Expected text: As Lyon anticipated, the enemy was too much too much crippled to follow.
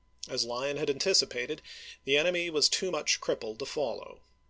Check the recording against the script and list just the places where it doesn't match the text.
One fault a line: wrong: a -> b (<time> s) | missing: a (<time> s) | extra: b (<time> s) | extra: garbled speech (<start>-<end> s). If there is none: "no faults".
extra: had (0.8 s)
missing: too much (3.2 s)